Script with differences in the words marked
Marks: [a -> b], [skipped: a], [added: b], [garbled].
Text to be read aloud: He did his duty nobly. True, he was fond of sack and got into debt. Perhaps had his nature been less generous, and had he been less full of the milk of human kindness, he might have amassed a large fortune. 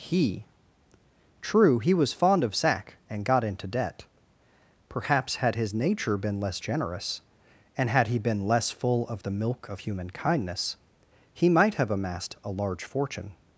He [skipped: did his duty nobly.] True, he was fond of sack and got into debt. Perhaps had his nature been less generous, and had he been less full of the milk of human kindness, he might have amassed a large fortune.